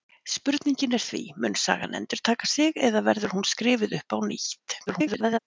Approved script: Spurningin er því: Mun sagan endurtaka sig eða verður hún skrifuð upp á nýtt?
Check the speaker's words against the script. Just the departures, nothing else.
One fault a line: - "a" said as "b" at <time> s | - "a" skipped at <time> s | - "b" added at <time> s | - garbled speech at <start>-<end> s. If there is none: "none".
- garbled speech at 4.9-5.4 s